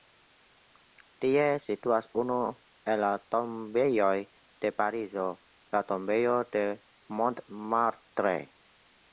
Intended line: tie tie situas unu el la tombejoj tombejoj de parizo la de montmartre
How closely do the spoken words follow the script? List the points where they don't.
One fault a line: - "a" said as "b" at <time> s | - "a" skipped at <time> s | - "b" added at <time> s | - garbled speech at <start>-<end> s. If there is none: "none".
- "tie" skipped at 1.4 s
- "tombejoj" skipped at 4.1 s
- "tombejo" added at 5.9 s